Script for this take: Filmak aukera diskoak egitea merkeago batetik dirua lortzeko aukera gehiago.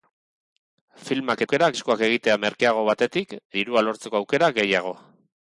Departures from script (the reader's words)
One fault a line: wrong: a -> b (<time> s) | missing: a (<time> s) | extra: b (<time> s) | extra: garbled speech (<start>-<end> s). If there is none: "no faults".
no faults